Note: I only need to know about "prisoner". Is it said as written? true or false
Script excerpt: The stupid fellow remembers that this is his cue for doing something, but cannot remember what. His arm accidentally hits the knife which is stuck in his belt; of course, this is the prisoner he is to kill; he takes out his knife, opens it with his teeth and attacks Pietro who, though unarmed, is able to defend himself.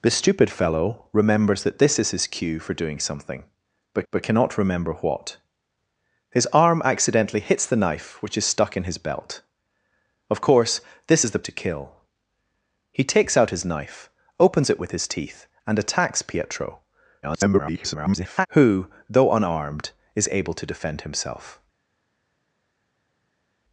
false